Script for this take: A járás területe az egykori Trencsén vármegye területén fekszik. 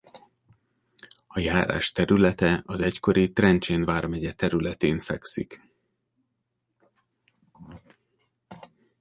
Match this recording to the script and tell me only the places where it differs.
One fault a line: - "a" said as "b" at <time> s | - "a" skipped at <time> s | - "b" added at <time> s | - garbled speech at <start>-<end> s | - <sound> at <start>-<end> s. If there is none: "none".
none